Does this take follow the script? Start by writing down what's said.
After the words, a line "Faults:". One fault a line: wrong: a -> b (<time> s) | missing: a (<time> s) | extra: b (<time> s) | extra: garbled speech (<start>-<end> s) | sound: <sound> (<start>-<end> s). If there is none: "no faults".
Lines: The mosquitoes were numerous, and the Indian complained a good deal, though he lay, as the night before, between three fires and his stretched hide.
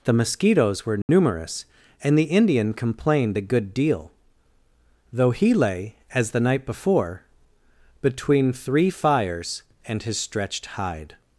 The mosquitoes were numerous, and the Indian complained a good deal, though he lay, as the night before, between three fires and his stretched hide.
Faults:
sound: dropout (1.0-1.1 s)